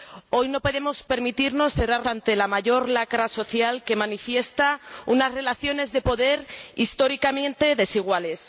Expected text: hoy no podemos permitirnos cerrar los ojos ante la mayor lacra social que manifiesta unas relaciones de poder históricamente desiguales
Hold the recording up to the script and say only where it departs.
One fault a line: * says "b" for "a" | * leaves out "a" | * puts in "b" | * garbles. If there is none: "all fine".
* leaves out "los ojos"